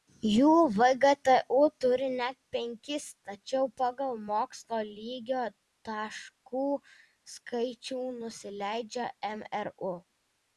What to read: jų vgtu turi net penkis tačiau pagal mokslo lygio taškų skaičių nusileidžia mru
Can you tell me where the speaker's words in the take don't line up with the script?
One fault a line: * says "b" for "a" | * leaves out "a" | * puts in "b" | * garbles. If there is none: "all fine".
all fine